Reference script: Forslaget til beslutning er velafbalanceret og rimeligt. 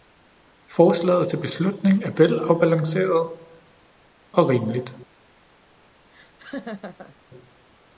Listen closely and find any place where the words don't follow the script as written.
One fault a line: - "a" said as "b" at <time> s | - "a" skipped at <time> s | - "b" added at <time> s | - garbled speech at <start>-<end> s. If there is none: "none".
none